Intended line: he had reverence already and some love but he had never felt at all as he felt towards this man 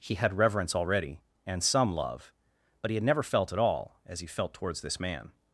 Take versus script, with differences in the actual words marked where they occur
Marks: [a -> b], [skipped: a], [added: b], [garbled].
he had reverence already and some love but he had never felt at all as he felt towards this man